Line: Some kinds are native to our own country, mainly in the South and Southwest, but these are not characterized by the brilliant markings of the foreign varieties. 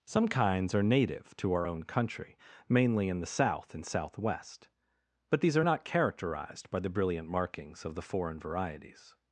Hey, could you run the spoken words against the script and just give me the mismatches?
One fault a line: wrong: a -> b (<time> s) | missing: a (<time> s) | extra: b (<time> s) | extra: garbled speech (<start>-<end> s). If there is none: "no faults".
no faults